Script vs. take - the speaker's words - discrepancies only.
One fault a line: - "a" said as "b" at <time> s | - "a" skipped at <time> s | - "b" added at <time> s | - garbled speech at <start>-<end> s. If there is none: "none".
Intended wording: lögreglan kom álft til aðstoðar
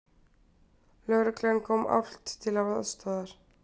none